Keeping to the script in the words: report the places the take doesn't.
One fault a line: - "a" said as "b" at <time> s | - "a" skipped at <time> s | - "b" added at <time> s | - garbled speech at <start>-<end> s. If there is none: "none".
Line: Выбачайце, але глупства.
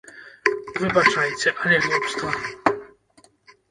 none